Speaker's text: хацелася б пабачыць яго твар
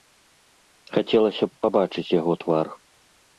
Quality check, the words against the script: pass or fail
pass